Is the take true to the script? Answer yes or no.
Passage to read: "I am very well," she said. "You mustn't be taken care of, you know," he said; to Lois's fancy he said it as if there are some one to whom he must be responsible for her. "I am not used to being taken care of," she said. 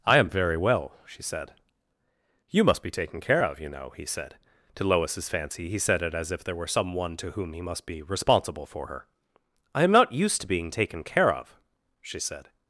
no